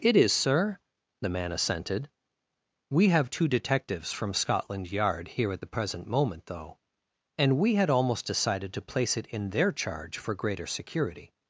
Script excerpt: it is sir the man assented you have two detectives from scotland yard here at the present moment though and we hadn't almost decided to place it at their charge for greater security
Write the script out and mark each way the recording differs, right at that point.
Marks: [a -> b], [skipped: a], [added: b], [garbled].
it is sir the man assented [you -> we] have two detectives from scotland yard here at the present moment though and we [hadn't -> had] almost decided to place it [at -> in] their charge for greater security